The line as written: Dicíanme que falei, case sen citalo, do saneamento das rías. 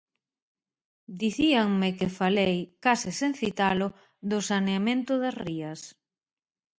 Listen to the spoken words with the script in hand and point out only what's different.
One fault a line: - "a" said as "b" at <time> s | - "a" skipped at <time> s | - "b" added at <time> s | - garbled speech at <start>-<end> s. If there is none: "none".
none